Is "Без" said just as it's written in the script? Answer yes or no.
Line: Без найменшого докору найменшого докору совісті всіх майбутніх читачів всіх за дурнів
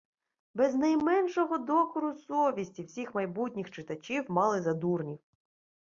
yes